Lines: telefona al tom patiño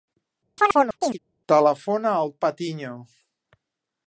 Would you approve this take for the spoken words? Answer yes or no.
no